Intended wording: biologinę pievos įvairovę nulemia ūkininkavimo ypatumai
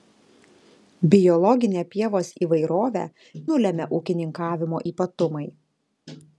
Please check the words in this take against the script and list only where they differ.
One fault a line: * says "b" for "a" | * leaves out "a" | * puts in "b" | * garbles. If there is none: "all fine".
all fine